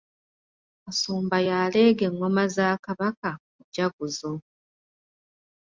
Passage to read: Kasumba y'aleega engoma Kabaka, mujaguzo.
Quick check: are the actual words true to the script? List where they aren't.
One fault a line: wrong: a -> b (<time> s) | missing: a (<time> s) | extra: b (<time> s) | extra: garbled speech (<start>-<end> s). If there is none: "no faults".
extra: za (2.6 s)